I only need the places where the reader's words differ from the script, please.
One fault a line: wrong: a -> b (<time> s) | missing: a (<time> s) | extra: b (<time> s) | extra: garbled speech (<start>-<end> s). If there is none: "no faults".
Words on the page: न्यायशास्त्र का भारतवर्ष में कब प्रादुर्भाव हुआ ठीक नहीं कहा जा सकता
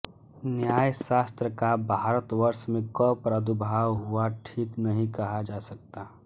no faults